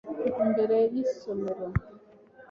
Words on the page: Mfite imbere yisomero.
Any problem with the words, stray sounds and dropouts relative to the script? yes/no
no